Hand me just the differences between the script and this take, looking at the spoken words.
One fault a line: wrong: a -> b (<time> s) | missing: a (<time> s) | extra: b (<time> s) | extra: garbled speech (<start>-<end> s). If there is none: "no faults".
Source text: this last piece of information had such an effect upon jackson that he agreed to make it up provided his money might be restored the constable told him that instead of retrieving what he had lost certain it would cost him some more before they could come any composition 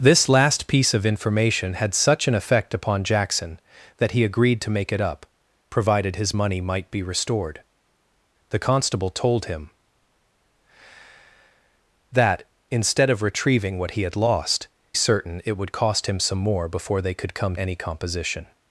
no faults